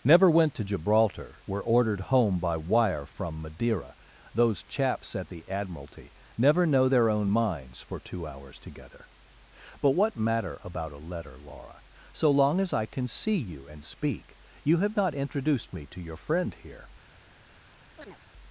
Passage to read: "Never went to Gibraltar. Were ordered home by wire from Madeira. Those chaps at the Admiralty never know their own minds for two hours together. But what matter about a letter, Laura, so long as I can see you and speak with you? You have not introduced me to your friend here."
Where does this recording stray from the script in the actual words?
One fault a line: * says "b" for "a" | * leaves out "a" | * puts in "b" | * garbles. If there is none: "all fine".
* leaves out "with you"